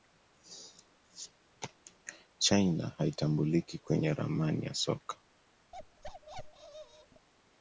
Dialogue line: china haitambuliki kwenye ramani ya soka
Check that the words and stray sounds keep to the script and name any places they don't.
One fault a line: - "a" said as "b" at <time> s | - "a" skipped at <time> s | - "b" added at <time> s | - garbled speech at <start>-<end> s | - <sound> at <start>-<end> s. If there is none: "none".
- bark at 5.7-7.3 s